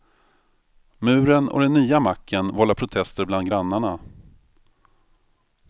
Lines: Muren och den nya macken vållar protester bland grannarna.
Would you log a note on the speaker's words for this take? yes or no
no